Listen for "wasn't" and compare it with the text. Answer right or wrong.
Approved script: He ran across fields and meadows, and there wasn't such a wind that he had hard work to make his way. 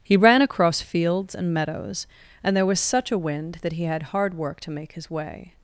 wrong